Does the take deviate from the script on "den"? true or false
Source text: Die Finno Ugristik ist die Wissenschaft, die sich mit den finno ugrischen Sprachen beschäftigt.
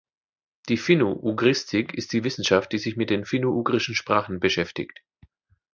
false